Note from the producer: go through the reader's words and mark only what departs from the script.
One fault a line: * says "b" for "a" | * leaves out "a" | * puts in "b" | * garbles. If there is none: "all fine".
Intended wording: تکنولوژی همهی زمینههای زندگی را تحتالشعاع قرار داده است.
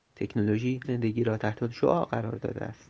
* leaves out "همهی زمینههای"